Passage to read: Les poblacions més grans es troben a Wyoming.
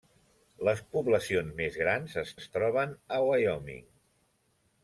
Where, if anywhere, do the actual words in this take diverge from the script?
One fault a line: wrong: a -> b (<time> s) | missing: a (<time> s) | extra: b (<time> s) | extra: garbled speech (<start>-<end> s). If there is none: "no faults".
extra: es (2.4 s)